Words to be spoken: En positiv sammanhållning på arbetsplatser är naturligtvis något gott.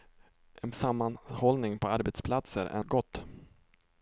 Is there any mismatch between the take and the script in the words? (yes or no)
yes